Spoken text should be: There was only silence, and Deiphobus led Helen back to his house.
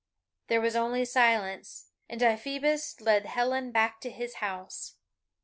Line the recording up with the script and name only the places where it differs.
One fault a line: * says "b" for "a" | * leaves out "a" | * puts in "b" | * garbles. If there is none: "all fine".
all fine